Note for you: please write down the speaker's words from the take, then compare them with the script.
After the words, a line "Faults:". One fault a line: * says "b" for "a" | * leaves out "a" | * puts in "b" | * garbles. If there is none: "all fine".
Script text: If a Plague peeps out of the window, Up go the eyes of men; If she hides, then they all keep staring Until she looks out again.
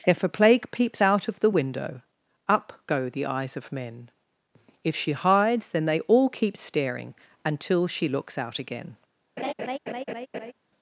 If a Plague peeps out of the window, Up go the eyes of men; If she hides, then they all keep staring Until she looks out again.
Faults:
all fine